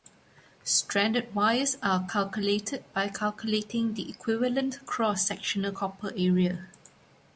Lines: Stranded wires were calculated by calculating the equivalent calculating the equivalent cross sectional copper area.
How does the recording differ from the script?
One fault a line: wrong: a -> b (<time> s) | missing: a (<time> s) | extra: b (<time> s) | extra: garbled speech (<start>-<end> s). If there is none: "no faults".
wrong: were -> are (1.8 s)
missing: calculating the equivalent (4.8 s)